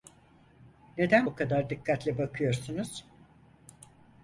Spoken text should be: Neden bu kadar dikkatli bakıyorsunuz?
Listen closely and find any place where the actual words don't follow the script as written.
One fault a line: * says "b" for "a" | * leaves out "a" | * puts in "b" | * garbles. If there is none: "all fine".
all fine